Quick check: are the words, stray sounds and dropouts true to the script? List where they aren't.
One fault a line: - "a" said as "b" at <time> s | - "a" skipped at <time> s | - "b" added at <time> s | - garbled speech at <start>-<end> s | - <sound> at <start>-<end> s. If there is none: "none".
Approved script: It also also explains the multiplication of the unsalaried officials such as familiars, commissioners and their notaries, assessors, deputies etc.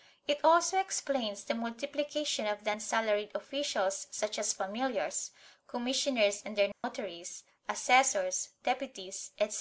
- "also" skipped at 0.8 s
- dropout at 6.7-6.8 s